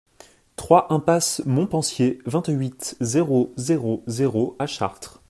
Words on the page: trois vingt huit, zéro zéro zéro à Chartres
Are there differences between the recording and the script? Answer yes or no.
yes